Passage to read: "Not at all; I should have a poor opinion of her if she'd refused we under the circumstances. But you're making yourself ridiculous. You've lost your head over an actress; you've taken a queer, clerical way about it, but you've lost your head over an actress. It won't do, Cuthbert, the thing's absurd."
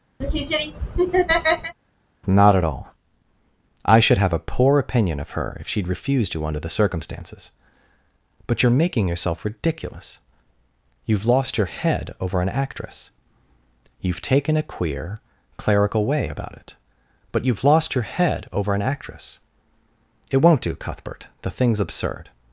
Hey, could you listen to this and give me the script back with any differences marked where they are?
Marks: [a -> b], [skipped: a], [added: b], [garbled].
"Not at all; I should have a poor opinion of her if she'd refused [we -> you] under the circumstances. But you're making yourself ridiculous. You've lost your head over an actress; you've taken a queer, clerical way about it, but you've lost your head over an actress. It won't do, Cuthbert, the thing's absurd."